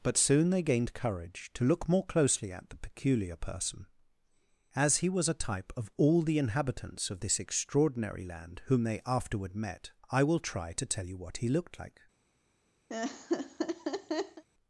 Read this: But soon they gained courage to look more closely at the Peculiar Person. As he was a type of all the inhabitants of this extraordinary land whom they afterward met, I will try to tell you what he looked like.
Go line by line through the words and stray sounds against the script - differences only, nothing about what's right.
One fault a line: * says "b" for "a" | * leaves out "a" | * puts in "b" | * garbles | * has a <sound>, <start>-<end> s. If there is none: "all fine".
* has a laugh, 12.9-14.4 s